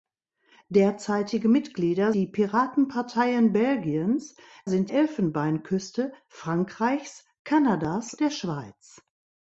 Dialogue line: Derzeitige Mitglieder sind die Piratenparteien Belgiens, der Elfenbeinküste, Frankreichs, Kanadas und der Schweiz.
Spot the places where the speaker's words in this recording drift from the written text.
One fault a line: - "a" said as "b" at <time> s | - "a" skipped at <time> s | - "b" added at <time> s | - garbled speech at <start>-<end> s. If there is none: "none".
- "sind" skipped at 2.1 s
- "der" said as "sind" at 4.7 s
- "und" skipped at 8.1 s